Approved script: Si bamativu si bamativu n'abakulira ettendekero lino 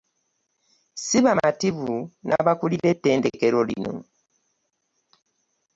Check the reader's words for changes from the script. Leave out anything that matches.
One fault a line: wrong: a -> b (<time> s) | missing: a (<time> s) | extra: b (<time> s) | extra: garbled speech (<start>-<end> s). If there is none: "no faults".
missing: si bamativu (1.9 s)